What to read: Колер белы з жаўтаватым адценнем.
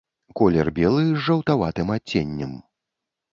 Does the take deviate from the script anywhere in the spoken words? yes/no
no